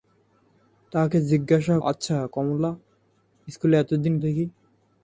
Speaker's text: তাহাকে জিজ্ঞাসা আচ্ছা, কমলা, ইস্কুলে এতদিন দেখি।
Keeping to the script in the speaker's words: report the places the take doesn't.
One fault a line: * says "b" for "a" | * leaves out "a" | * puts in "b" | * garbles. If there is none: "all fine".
all fine